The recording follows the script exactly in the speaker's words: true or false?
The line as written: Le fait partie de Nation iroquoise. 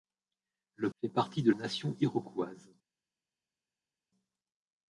true